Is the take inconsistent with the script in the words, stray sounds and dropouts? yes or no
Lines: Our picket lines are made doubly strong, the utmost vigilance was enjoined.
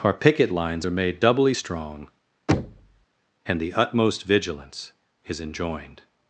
yes